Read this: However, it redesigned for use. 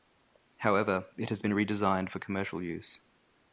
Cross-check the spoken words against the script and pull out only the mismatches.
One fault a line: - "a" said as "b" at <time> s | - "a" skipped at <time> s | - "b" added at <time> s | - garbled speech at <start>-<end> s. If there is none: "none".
- "has been" added at 1.3 s
- "commercial" added at 2.2 s